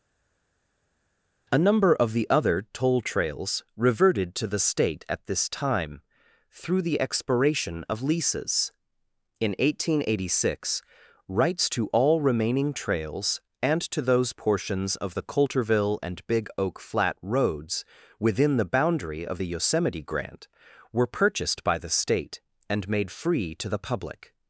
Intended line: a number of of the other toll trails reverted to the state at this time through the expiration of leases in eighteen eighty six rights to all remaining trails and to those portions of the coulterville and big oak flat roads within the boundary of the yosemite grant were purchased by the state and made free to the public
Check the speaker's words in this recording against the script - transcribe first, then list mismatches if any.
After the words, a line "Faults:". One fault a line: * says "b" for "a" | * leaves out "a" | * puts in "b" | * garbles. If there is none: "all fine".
a number of the other toll trails reverted to the state at this time through the expiration of leases in eighteen eighty six rights to all remaining trails and to those portions of the coulterville and big oak flat roads within the boundary of the yosemite grant were purchased by the state and made free to the public
Faults:
* leaves out "of"